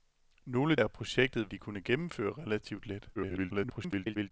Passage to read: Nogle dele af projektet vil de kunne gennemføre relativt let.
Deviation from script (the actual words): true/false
true